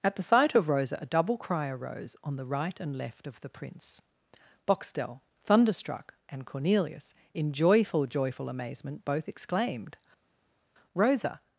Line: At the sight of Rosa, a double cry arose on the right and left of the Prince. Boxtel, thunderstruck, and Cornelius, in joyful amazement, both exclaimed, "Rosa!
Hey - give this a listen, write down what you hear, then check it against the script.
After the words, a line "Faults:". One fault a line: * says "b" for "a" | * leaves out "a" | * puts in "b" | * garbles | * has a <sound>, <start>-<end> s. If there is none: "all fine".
At the sight of Rosa, a double cry arose on the right and left of the Prince. Boxtel, thunderstruck, and Cornelius, in joyful joyful amazement, both exclaimed, "Rosa!
Faults:
* puts in "joyful"